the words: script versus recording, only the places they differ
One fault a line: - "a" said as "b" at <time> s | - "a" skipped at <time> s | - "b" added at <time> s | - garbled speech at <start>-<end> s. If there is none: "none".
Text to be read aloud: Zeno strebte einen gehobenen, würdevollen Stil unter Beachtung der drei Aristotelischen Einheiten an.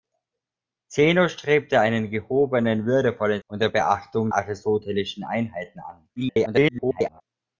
- "Stil" skipped at 3.4 s
- "der drei" skipped at 4.3 s
- garbled speech at 6.2-7.2 s